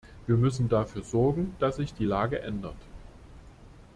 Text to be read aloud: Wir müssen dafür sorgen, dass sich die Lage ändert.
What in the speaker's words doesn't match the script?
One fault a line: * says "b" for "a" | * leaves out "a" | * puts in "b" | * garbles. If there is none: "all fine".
all fine